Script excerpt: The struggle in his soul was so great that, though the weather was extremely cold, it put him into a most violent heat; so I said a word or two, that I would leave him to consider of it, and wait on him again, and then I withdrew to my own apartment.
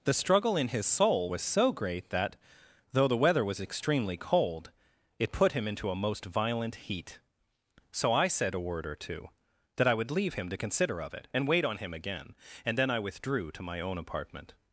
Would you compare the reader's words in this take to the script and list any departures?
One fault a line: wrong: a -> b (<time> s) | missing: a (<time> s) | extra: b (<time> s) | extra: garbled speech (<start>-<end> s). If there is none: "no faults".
no faults